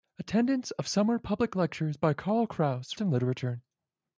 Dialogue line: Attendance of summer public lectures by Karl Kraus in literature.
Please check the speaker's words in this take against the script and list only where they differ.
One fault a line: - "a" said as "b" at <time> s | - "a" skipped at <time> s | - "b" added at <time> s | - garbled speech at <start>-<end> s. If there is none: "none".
none